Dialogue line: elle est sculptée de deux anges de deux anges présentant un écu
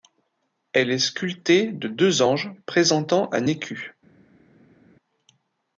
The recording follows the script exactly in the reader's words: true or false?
false